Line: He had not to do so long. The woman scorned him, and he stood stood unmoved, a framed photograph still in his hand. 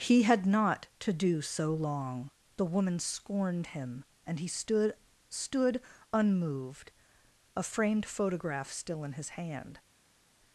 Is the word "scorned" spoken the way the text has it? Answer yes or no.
yes